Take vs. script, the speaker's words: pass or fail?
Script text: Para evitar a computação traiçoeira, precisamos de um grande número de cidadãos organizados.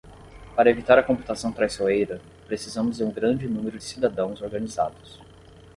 fail